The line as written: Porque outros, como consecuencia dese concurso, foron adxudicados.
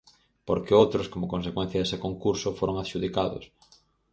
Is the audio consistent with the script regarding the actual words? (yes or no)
yes